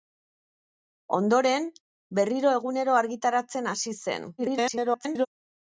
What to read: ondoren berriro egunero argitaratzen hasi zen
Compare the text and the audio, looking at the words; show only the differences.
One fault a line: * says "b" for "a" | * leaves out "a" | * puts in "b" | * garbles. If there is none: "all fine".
* garbles